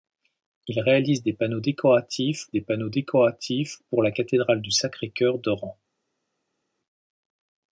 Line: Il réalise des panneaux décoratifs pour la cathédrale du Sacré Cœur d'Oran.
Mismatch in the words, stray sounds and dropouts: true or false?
true